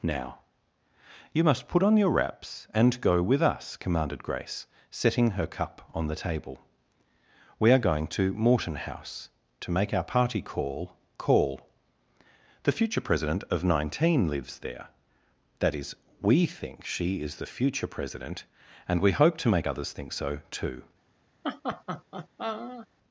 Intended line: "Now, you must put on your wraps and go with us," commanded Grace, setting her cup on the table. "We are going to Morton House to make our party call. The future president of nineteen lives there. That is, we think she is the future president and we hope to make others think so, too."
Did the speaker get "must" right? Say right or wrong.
right